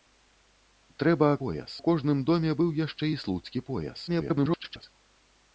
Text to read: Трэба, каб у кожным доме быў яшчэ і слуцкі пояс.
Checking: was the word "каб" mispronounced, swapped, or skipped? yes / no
yes